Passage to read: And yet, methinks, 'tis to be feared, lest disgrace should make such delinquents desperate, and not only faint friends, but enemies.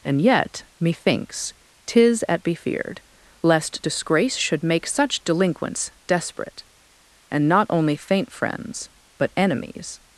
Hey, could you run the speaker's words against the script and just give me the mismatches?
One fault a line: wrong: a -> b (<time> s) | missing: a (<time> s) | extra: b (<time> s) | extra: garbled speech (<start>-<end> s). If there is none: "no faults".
wrong: to -> at (2.3 s)